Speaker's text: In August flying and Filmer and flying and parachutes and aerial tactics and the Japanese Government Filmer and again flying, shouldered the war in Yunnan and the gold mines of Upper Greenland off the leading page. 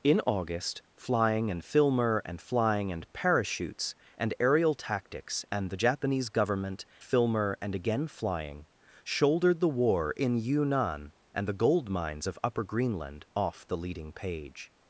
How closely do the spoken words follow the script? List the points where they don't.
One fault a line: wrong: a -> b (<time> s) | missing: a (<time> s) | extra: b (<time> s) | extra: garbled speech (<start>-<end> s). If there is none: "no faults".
no faults